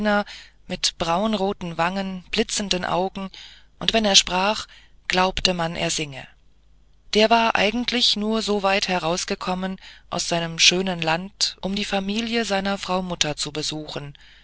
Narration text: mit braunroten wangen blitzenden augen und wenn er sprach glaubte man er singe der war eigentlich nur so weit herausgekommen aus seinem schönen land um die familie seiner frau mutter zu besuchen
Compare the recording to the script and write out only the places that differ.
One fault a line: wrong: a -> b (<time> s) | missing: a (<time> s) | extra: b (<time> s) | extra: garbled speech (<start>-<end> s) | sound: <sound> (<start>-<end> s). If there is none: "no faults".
no faults